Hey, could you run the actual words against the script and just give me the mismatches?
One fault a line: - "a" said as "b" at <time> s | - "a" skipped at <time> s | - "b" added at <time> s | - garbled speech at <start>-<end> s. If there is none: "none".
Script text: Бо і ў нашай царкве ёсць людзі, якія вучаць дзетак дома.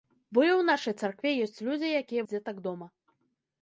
- "вучаць" skipped at 2.2 s